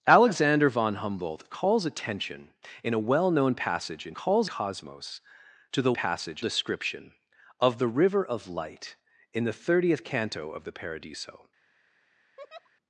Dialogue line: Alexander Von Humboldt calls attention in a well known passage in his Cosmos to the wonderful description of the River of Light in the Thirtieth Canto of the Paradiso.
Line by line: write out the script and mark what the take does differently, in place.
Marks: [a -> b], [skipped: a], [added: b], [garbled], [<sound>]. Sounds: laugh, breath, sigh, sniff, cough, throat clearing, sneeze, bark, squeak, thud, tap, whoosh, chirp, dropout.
Alexander Von Humboldt calls attention in a well known passage in [his -> calls] Cosmos to the [wonderful -> passage] description of the River of Light in the Thirtieth Canto of the Paradiso. [laugh]